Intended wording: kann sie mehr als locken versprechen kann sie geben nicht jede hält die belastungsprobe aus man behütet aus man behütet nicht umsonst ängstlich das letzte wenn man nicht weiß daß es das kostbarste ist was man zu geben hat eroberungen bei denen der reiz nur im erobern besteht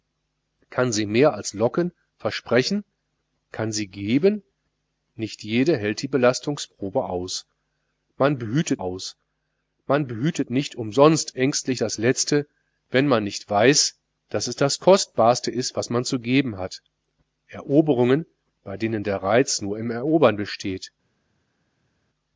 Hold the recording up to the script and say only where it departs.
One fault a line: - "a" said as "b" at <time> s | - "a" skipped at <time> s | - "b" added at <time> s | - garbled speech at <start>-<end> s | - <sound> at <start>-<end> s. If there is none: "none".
none